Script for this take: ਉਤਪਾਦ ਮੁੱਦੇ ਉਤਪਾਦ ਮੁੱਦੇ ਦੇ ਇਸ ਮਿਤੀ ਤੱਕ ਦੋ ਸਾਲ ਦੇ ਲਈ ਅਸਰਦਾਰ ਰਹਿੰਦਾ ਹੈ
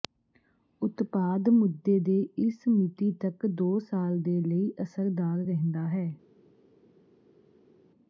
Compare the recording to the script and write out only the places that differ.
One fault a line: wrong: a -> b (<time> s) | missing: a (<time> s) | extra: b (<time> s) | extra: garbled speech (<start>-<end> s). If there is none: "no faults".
missing: ਉਤਪਾਦ ਮੁੱਦੇ (2.0 s)